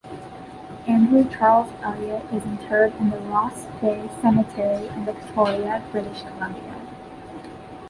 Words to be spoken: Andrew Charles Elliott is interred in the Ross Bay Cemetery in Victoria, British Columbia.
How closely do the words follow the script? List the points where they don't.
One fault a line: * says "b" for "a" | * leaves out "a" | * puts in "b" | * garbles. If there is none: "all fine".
all fine